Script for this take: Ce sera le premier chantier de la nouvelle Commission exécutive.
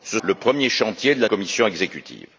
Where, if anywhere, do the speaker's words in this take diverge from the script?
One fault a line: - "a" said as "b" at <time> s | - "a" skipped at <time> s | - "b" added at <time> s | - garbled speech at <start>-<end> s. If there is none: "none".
- "sera" skipped at 0.2 s
- "nouvelle" skipped at 1.3 s